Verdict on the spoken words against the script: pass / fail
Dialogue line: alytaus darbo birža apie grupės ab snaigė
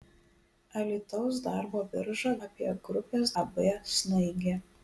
pass